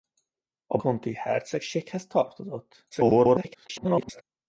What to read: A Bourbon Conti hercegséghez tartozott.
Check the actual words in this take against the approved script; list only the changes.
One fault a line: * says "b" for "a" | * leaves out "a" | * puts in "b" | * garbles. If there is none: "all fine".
* leaves out "Bourbon"
* garbles